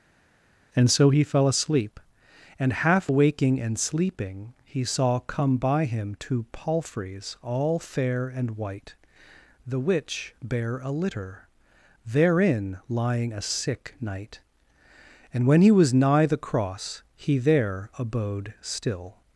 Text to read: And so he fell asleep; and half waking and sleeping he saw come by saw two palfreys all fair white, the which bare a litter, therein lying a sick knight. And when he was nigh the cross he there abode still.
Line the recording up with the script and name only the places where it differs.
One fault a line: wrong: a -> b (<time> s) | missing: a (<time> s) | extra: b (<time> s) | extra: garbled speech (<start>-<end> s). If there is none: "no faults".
wrong: saw -> him (5.8 s)
extra: and (8.3 s)